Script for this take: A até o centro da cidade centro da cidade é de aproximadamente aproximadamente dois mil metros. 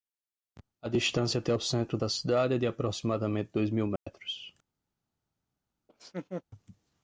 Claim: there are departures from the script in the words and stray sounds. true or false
true